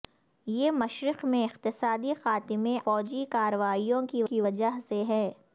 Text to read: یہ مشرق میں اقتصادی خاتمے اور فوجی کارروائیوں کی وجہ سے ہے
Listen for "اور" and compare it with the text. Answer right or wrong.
wrong